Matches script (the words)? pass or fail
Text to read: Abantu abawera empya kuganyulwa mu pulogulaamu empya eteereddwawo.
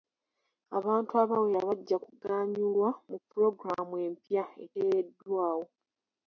fail